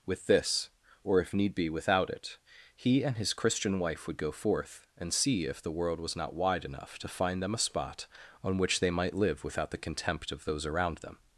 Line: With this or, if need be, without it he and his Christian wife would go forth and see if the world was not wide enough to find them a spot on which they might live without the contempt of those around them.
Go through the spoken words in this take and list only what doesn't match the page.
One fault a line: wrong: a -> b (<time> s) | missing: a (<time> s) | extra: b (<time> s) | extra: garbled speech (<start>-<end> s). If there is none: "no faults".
no faults